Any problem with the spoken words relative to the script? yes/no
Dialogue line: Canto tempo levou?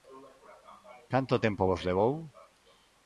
yes